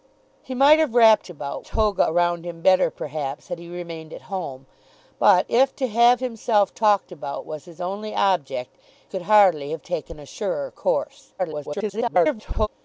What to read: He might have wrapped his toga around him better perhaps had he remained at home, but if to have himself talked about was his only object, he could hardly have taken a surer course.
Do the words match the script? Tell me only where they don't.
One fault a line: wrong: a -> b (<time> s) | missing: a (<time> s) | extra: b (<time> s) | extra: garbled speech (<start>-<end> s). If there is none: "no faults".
wrong: his -> about (1.3 s)
missing: he (8.8 s)
extra: garbled speech (11.4-12.7 s)